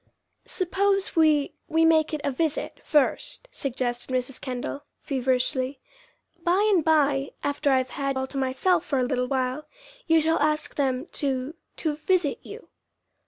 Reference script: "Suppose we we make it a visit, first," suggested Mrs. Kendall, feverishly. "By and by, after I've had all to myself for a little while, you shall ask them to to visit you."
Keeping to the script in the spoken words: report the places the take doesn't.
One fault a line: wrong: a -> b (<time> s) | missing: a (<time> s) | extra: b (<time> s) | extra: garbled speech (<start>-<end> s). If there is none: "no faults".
no faults